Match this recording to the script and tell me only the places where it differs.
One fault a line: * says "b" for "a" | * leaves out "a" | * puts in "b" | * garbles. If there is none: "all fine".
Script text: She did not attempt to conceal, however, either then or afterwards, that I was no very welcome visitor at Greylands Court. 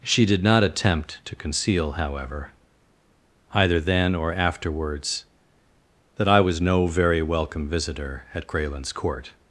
all fine